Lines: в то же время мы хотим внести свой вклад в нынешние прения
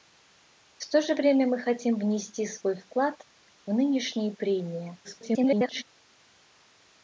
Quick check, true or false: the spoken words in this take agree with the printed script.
false